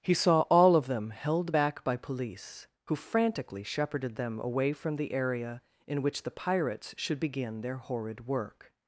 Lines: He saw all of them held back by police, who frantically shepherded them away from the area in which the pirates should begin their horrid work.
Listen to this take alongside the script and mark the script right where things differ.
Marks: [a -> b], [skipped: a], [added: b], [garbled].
He saw all of them held back by police, who frantically shepherded them away from the area in which the pirates should begin their horrid work.